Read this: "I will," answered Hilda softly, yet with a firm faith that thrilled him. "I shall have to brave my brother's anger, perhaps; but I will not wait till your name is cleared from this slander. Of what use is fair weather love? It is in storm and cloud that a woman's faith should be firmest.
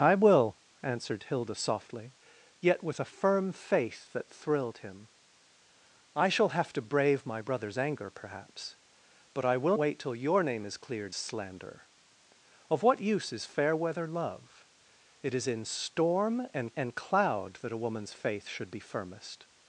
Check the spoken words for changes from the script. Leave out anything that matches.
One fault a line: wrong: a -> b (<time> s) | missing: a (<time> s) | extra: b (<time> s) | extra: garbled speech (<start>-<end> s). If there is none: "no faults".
missing: not (9.7 s)
missing: from this (11.1 s)
extra: and (16.7 s)